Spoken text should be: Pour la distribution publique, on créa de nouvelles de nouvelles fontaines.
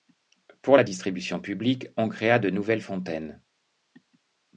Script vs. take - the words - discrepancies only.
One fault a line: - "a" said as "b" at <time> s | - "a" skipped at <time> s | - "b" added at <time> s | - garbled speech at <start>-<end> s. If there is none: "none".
- "de nouvelles" skipped at 2.8 s